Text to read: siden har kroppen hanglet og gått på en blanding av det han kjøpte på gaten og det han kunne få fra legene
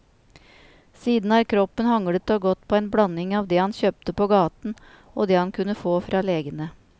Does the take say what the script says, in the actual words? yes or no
yes